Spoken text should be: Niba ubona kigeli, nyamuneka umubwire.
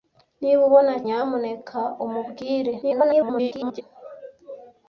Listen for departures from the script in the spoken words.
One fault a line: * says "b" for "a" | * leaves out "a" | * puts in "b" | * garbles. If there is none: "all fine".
* leaves out "kigeli"
* garbles